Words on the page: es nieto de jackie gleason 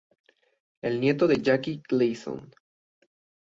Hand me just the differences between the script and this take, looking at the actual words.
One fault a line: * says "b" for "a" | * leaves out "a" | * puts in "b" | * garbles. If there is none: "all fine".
all fine